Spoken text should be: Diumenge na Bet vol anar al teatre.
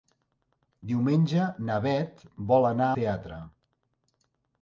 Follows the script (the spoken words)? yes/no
no